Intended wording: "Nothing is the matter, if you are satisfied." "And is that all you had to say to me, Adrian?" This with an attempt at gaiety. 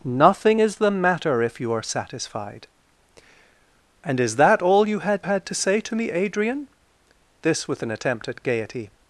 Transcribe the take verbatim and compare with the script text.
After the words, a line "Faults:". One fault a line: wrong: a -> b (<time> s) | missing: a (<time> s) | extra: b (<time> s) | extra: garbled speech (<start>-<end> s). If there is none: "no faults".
"Nothing is the matter, if you are satisfied." "And is that all you had had to say to me, Adrian?" This with an attempt at gaiety.
Faults:
extra: had (5.2 s)